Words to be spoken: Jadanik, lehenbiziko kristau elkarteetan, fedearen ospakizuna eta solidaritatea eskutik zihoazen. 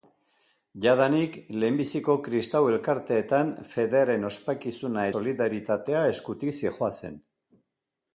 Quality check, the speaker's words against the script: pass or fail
fail